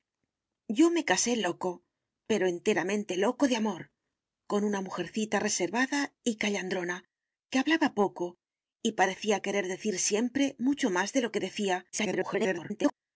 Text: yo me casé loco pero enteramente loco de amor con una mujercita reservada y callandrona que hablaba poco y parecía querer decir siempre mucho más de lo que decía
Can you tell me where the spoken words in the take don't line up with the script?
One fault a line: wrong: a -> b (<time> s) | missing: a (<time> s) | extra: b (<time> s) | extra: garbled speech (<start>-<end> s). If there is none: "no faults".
extra: garbled speech (11.9-12.9 s)